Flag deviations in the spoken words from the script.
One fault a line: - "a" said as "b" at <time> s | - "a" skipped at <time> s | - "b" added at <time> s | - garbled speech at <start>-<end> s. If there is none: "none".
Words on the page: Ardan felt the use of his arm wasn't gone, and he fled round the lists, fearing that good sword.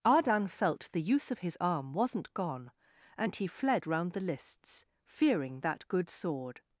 none